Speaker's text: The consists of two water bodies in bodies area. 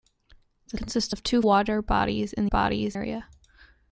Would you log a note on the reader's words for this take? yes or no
no